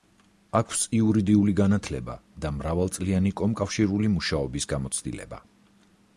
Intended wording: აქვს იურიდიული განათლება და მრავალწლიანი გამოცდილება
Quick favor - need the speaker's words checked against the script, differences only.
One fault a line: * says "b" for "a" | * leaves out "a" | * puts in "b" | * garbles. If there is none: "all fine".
* puts in "კომკავშირული მუშაობის"